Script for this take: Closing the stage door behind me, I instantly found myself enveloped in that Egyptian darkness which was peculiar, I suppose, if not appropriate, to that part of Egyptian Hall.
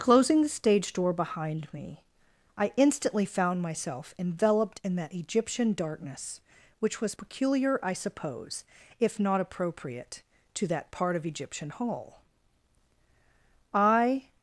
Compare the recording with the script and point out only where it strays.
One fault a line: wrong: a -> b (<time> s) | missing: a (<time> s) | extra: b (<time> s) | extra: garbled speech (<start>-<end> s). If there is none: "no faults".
extra: I (13.7 s)